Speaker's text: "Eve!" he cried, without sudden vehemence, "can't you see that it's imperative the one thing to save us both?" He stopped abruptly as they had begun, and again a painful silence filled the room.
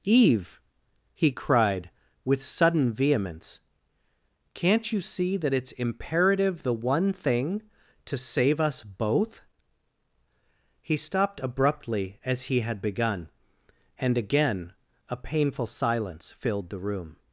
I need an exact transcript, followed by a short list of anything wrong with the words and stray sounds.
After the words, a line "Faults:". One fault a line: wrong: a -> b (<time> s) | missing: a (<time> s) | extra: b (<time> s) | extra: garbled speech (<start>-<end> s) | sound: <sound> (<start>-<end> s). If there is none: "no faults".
"Eve!" he cried, with sudden vehemence, "can't you see that it's imperative the one thing to save us both?" He stopped abruptly as he had begun, and again a painful silence filled the room.
Faults:
wrong: without -> with (2.2 s)
wrong: they -> he (12.4 s)